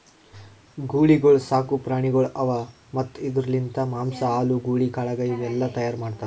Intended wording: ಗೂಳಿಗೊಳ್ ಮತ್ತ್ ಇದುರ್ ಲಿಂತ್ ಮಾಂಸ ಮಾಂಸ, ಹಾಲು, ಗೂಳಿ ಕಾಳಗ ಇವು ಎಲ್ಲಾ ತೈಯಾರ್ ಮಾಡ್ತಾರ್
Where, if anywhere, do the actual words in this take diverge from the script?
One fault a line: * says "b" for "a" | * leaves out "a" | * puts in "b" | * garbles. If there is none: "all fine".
* puts in "ಸಾಕು ಪ್ರಾಣಿಗೊಳ್ ಅವಾ"
* leaves out "ಮಾಂಸ"